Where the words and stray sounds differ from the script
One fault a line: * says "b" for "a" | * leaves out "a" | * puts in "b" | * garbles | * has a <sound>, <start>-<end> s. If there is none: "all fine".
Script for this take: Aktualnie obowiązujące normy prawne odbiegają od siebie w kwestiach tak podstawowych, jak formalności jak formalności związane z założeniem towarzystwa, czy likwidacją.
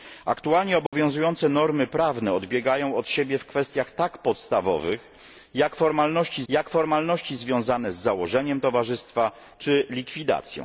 * has a dropout, 0.9-0.9 s